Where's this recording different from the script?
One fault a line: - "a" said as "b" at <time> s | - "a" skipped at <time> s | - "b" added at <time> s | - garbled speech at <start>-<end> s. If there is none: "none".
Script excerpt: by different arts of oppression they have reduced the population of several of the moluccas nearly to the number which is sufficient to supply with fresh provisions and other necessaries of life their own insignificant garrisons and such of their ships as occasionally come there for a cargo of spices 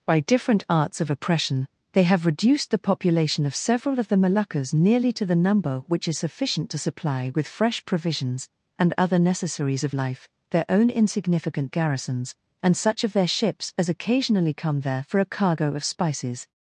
none